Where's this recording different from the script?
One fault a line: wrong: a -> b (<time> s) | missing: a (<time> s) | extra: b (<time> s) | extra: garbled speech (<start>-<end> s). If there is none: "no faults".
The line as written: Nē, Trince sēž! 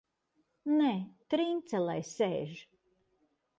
extra: lai (1.9 s)